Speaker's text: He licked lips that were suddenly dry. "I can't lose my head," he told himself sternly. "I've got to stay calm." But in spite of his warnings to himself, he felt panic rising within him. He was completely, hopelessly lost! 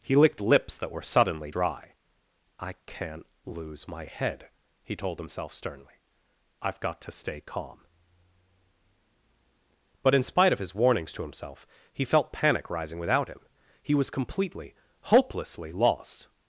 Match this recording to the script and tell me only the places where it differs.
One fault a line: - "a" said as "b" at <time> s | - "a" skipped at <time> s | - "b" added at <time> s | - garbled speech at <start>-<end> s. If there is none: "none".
- "within" said as "without" at 13.0 s